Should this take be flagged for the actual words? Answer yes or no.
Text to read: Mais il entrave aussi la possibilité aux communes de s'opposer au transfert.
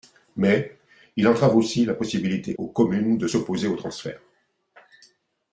no